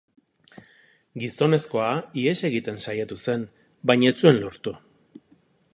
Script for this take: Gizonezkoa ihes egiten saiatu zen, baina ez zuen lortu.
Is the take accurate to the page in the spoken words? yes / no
yes